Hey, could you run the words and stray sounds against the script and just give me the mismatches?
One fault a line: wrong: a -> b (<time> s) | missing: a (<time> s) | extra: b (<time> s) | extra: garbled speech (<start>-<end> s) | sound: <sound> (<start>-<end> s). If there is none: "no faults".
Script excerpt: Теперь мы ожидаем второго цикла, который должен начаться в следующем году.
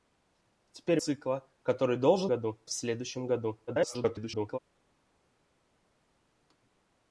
missing: мы ожидаем второго (1.0 s)
wrong: начаться -> году (2.3 s)
extra: garbled speech (3.7-4.6 s)